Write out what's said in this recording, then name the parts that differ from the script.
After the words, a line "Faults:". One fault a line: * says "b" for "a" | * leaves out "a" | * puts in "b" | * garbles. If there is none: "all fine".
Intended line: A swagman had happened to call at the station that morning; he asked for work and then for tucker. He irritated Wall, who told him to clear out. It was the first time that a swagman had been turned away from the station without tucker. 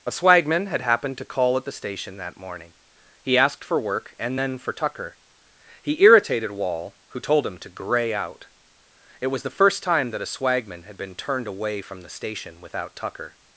A swagman had happened to call at the station that morning; he asked for work and then for tucker. He irritated Wall, who told him to gray out. It was the first time that a swagman had been turned away from the station without tucker.
Faults:
* says "gray" for "clear"